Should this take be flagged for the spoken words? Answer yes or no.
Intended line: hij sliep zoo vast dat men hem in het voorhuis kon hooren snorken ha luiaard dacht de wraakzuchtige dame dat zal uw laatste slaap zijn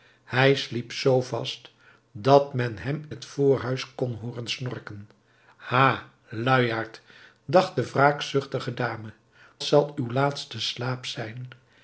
yes